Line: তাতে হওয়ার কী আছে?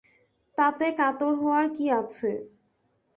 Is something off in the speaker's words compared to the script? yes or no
yes